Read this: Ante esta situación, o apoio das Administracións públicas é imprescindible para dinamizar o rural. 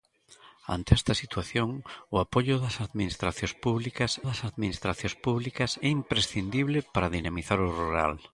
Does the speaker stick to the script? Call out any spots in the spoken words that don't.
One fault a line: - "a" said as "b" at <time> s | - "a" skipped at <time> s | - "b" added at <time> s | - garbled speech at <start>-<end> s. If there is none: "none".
- "das Administracións públicas" added at 4.3 s